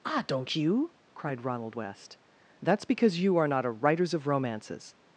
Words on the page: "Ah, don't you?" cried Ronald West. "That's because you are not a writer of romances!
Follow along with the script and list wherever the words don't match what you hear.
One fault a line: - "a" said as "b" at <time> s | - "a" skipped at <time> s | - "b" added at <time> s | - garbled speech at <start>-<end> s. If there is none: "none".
- "writer" said as "writers" at 3.7 s